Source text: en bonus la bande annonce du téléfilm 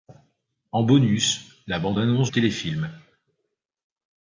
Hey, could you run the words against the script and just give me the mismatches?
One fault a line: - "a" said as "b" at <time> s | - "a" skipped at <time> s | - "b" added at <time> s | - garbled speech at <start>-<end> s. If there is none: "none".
- "du" skipped at 2.3 s